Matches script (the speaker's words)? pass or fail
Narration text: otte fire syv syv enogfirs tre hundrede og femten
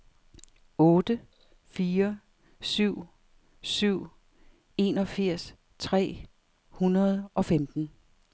pass